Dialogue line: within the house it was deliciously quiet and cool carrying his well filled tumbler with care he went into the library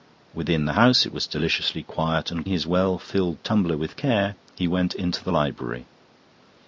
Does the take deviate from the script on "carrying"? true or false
true